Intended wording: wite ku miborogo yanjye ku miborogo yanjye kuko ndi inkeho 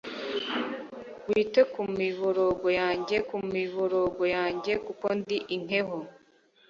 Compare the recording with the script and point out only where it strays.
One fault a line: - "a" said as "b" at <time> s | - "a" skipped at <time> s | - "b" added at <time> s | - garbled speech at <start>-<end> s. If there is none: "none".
none